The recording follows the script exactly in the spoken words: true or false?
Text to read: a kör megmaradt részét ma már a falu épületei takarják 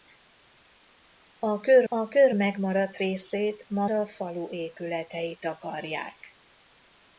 false